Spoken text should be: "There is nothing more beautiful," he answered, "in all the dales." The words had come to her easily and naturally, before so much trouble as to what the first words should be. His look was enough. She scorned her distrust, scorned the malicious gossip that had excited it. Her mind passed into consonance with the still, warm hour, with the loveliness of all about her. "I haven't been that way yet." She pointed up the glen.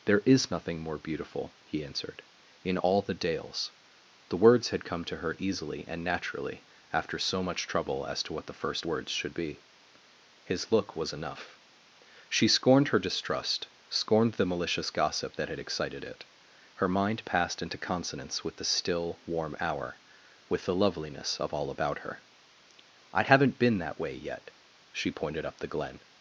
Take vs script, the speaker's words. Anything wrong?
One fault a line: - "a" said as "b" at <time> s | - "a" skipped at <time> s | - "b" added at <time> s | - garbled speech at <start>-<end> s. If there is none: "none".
- "before" said as "after" at 6.9 s